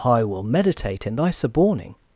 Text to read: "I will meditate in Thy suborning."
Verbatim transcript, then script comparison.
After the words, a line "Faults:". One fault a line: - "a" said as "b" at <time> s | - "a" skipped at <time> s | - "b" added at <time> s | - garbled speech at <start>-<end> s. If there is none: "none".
"I will meditate in Thy suborning."
Faults:
none